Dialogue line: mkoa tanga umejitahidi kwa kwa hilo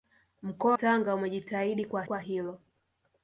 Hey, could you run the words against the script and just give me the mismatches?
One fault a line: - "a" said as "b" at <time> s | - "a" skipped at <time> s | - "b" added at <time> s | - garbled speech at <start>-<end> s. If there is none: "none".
none